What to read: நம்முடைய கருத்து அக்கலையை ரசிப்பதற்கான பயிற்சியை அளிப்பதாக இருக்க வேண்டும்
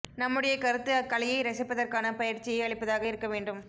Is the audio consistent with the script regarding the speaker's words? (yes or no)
yes